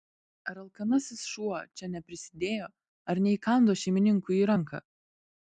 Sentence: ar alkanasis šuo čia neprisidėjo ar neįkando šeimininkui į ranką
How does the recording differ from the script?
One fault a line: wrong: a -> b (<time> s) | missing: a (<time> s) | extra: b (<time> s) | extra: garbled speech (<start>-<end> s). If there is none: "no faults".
no faults